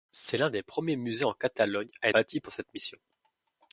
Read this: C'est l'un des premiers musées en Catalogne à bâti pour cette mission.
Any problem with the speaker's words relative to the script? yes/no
no